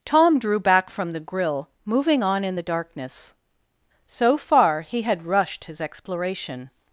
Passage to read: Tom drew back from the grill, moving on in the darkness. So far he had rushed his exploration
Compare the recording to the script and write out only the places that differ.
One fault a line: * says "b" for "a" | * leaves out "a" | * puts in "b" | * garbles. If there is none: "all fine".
all fine